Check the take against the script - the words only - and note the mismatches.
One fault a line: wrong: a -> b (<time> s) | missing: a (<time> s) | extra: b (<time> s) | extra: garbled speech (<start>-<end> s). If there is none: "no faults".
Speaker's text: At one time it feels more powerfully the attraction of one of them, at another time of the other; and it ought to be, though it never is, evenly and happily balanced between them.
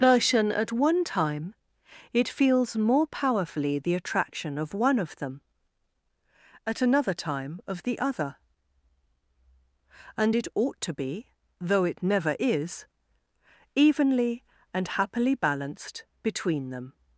extra: version (0.0 s)